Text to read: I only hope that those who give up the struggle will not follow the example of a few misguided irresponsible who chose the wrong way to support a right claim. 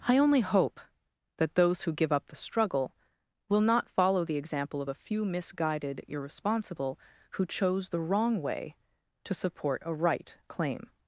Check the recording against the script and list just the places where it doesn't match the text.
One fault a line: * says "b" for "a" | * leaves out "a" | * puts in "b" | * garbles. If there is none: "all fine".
all fine